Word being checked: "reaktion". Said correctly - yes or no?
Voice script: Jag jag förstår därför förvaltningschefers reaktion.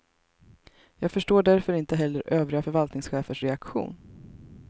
yes